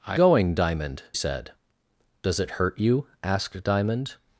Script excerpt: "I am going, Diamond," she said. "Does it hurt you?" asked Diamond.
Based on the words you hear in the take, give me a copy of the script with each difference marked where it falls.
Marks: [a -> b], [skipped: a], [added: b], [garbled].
"I [skipped: am] going, Diamond," [skipped: she] said. "Does it hurt you?" asked Diamond.